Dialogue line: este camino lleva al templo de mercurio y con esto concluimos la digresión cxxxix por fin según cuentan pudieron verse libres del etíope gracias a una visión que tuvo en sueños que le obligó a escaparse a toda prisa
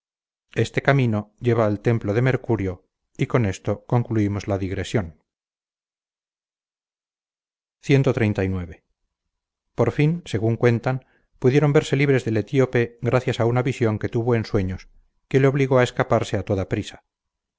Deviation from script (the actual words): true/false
false